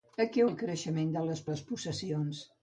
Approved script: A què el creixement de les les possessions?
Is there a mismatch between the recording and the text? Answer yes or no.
no